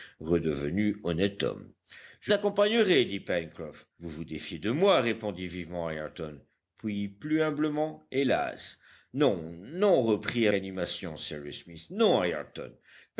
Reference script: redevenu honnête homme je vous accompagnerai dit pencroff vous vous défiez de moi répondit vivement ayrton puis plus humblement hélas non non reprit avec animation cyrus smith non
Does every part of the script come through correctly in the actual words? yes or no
no